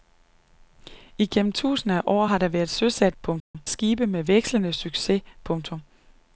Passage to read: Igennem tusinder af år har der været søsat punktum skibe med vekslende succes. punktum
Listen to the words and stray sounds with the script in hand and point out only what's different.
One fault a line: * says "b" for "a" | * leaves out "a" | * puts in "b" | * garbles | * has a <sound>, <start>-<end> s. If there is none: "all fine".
* has a dropout, 3.4-3.5 s